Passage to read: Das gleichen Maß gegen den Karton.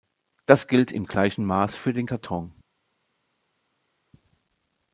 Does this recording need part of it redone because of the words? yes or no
yes